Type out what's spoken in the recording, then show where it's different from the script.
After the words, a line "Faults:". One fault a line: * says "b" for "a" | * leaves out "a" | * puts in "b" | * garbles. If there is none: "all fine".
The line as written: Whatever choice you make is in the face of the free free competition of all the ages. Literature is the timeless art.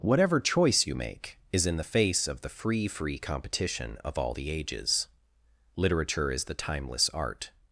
Whatever choice you make is in the face of the free free competition of all the ages. Literature is the timeless art.
Faults:
all fine